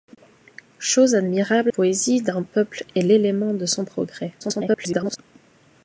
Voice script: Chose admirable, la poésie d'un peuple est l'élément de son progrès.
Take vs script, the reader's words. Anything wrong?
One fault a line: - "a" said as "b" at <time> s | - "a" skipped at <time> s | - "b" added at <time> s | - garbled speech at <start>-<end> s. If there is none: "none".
- "la" skipped at 1.7 s
- garbled speech at 4.4-5.2 s